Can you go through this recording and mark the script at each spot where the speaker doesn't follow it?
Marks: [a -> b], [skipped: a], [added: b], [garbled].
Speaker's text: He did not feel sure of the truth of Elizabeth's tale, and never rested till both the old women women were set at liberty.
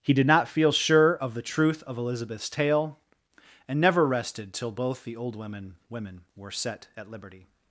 He did not feel sure of the truth of Elizabeth's tale, and never rested till both the old women women were set at liberty.